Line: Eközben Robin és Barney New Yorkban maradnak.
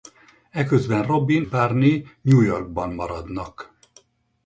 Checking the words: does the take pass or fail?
fail